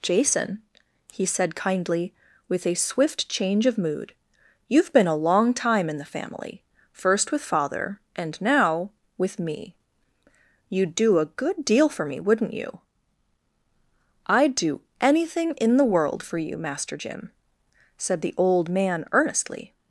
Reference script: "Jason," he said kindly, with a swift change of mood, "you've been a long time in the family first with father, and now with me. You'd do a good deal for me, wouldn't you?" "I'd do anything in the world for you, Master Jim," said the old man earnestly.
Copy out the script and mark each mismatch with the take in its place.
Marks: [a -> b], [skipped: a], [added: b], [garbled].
"Jason," he said kindly, with a swift change of mood, "you've been a long time in the family first with father, and now with me. You'd do a good deal for me, wouldn't you?" "I'd do anything in the world for you, Master Jim," said the old man earnestly.